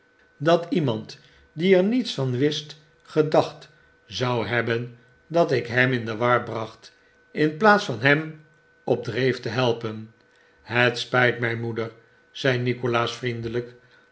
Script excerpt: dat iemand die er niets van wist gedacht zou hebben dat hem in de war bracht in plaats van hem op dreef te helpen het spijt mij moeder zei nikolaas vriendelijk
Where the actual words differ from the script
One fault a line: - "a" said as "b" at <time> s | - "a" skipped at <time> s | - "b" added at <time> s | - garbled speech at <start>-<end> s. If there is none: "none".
- "ik" added at 5.5 s